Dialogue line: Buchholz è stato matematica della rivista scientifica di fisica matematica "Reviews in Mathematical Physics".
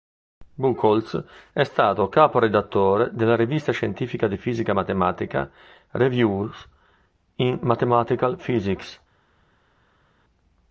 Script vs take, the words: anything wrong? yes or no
yes